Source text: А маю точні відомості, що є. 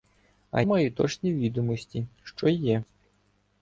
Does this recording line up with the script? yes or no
yes